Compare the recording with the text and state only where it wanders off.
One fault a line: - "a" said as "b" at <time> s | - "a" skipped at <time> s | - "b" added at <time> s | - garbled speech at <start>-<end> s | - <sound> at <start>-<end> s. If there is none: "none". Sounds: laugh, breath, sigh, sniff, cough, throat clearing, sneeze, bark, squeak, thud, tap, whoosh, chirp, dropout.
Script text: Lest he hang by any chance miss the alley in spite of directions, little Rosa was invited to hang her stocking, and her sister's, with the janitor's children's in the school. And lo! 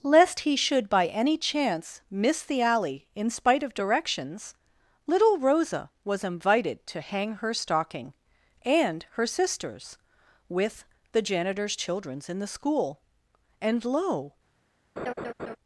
- "hang" said as "should" at 0.6 s
- laugh at 15.0-15.6 s